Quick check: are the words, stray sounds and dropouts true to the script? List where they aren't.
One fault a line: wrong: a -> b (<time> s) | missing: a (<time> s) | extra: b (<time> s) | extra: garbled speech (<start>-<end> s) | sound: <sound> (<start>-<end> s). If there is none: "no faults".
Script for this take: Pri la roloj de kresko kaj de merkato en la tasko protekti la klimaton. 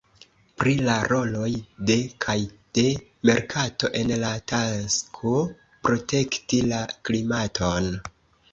missing: kresko (2.0 s)